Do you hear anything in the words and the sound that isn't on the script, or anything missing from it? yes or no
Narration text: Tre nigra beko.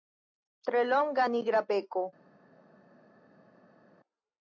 yes